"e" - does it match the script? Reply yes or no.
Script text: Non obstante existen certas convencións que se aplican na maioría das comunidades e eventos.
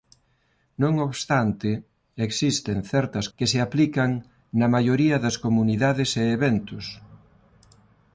yes